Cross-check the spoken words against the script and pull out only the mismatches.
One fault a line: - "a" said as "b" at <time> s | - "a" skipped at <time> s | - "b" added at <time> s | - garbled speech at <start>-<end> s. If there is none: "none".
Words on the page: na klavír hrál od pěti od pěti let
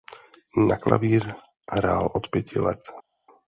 - "od pěti" skipped at 2.6 s